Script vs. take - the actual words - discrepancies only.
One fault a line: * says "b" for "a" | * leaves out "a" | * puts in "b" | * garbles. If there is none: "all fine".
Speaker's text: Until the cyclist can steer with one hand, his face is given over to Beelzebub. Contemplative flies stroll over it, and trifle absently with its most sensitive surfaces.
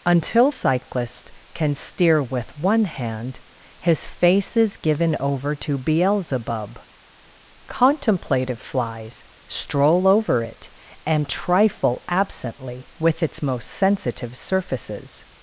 * leaves out "the"